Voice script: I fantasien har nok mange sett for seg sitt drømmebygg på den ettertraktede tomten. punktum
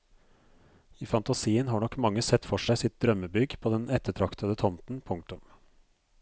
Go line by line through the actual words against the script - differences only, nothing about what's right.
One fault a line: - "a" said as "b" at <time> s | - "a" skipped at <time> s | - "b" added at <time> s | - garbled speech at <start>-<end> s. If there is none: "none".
none